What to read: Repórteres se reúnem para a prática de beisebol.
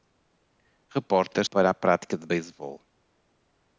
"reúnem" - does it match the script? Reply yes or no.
no